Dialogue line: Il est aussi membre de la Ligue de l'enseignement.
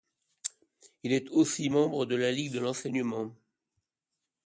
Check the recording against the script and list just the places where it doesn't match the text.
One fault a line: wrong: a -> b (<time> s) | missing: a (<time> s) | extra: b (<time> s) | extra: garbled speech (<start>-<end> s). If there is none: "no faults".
no faults